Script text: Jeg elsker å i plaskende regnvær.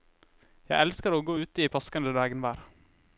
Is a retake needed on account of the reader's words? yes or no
yes